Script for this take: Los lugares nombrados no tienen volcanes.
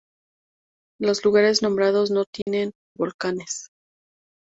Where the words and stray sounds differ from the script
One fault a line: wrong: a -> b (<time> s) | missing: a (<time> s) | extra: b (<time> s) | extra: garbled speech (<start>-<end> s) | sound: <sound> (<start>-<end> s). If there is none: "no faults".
sound: dropout (2.4-2.5 s)